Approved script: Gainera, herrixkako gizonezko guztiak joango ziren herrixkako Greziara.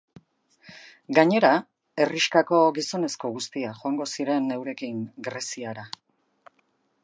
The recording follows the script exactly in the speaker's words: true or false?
false